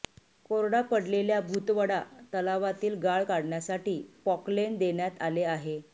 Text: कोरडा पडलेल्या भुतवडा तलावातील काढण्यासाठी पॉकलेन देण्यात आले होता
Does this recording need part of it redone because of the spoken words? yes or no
yes